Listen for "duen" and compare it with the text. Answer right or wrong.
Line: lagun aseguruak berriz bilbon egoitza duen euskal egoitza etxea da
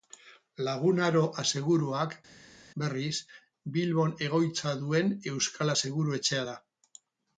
right